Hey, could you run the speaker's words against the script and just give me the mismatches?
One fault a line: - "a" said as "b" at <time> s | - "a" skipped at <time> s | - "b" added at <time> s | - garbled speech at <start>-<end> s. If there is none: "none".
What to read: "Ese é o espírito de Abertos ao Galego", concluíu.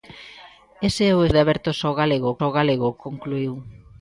- "espírito" skipped at 1.3 s
- "ao Galego" added at 2.4 s